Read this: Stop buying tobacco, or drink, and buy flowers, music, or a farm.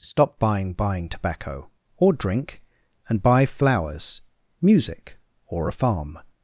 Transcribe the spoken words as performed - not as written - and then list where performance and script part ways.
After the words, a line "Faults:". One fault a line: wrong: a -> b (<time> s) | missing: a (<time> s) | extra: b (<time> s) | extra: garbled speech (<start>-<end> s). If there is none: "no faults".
Stop buying buying tobacco, or drink, and buy flowers, music, or a farm.
Faults:
extra: buying (0.7 s)